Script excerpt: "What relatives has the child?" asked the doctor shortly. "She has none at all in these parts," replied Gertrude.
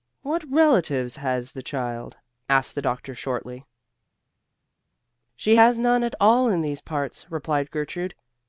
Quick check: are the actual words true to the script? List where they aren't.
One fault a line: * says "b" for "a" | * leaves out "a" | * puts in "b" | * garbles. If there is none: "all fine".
all fine